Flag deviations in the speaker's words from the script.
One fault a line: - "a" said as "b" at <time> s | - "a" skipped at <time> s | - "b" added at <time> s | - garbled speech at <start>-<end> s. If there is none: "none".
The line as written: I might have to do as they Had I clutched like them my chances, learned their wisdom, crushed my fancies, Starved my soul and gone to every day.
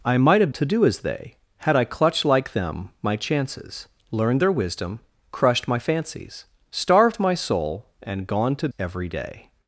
none